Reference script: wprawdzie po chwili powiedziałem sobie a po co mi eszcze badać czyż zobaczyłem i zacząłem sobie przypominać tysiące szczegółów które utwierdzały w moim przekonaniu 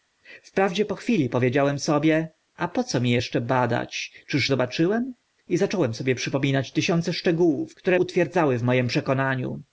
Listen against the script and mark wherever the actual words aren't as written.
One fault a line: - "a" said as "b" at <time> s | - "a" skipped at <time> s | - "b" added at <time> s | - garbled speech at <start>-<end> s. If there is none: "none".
none